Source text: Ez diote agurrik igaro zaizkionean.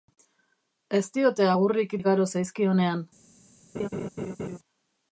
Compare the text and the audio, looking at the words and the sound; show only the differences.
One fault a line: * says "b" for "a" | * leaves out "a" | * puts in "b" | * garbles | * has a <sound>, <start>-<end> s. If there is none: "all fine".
* has a laugh, 3.7-4.6 s